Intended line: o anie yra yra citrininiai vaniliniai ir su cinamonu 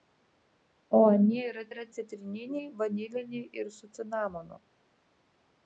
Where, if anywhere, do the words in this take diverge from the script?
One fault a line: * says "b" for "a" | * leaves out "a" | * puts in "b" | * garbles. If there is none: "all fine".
all fine